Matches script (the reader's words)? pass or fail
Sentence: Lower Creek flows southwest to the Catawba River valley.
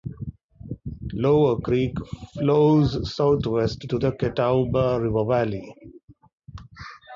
pass